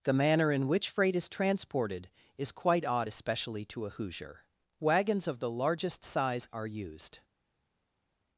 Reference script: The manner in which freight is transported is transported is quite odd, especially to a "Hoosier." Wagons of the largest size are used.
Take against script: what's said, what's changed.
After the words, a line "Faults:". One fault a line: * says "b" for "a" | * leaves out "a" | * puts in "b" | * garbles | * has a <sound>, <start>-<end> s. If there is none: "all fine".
The manner in which freight is transported is quite odd, especially to a "Hoosier." Wagons of the largest size are used.
Faults:
* leaves out "transported is"